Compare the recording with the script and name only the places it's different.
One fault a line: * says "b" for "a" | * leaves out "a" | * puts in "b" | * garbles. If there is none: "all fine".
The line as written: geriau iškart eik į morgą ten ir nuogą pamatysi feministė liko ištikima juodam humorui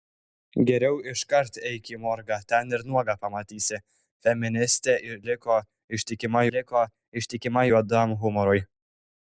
* puts in "liko ištikima"